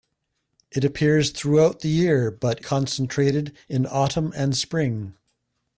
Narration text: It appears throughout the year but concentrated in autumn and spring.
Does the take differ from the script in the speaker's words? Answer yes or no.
no